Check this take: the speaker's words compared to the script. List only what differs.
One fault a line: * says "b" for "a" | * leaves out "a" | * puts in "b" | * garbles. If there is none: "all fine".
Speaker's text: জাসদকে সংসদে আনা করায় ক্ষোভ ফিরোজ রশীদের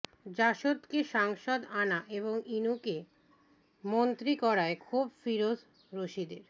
* puts in "এবং ইনুকে মন্ত্রী"